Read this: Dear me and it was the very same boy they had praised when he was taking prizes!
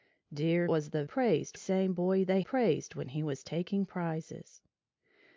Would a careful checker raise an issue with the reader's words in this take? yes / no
yes